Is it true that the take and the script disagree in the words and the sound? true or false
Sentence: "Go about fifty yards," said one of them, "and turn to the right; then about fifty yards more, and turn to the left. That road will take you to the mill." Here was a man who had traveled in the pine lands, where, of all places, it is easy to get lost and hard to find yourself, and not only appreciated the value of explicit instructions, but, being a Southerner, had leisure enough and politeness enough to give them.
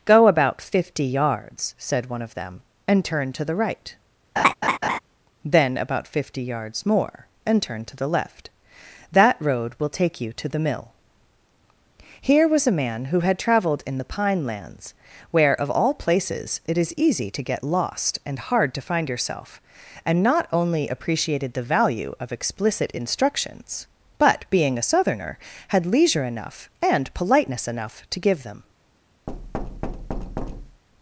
true